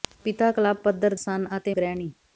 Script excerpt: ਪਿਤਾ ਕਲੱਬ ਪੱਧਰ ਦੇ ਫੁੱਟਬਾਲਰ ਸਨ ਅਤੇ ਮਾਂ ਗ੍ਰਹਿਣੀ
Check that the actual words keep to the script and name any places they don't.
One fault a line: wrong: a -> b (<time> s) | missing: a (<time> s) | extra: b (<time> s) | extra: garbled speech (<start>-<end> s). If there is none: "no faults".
missing: ਦੇ ਫੁੱਟਬਾਲਰ (1.1 s)
missing: ਮਾਂ (1.7 s)